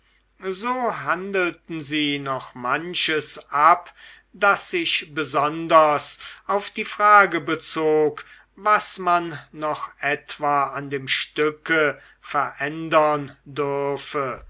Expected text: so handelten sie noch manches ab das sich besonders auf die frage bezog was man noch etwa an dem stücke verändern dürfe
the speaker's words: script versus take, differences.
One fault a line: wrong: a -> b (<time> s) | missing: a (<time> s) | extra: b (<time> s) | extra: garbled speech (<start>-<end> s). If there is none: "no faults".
no faults